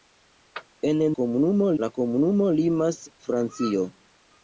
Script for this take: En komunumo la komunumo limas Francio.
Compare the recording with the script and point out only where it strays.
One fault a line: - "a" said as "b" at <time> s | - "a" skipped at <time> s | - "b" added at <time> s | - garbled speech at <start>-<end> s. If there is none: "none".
none